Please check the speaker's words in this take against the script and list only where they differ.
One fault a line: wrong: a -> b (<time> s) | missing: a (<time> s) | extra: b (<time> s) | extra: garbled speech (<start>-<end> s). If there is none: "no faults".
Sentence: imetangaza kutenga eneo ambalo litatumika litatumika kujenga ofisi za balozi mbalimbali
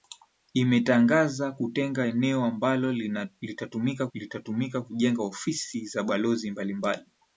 no faults